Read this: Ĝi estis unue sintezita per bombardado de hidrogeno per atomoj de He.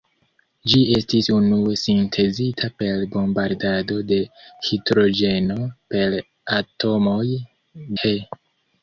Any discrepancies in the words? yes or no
yes